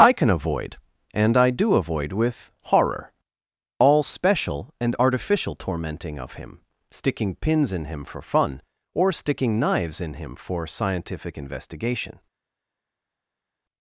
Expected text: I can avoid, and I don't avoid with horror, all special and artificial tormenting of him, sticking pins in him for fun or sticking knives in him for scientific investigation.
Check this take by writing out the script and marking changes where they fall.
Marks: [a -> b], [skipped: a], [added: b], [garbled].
I can avoid, and I [don't -> do] avoid with horror, all special and artificial tormenting of him, sticking pins in him for fun or sticking knives in him for scientific investigation.